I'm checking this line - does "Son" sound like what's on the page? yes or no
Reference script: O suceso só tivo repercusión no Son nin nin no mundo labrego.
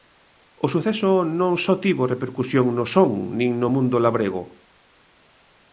yes